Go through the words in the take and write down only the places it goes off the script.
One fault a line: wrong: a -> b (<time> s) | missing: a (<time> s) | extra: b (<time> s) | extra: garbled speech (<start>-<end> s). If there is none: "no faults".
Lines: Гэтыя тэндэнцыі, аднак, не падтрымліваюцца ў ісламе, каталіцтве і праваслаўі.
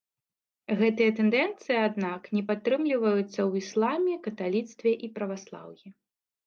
no faults